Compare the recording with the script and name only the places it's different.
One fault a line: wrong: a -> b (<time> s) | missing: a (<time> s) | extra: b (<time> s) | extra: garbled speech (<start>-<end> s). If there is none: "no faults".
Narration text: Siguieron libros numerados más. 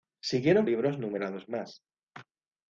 no faults